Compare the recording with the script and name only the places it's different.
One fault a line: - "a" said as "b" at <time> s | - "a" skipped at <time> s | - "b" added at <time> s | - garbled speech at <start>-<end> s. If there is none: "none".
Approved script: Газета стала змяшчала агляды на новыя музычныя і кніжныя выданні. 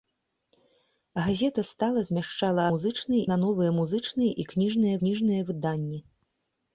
- "агляды" said as "музычныя" at 2.7 s
- "кніжныя" added at 5.0 s